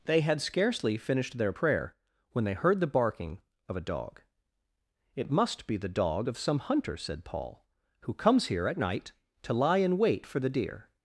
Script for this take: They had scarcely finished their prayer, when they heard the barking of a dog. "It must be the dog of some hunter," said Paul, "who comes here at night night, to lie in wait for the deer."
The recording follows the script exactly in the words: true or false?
false